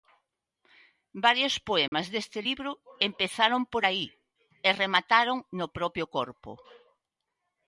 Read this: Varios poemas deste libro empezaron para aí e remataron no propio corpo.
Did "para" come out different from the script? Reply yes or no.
yes